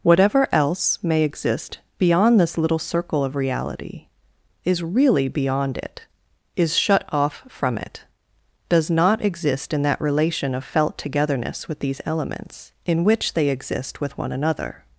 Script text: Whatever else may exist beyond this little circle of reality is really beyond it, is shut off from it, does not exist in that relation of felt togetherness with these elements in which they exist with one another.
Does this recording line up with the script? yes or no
yes